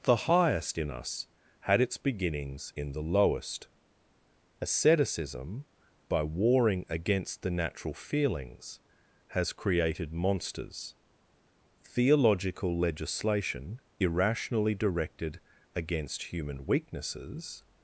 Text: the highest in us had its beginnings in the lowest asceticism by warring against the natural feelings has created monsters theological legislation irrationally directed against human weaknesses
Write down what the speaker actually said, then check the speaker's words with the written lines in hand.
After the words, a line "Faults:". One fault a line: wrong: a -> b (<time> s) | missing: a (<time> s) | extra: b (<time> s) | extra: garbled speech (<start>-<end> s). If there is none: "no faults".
the highest in us had its beginnings in the lowest asceticism by warring against the natural feelings has created monsters theological legislation irrationally directed against human weaknesses
Faults:
no faults